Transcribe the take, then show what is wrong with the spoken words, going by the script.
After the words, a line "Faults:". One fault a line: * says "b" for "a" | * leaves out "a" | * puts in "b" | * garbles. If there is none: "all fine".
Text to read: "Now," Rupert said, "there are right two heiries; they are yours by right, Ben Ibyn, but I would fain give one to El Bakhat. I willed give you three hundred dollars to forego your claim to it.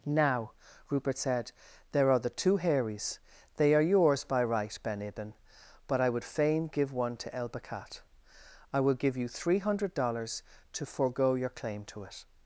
"Now," Rupert said, "there are the two heiries; they are yours by right, Ben Ibyn, but I would fain give one to El Bakhat. I will give you three hundred dollars to forego your claim to it.
Faults:
* says "the" for "right"
* says "will" for "willed"